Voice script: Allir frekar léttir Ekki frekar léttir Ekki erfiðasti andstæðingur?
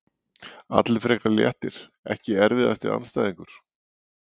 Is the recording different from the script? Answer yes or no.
yes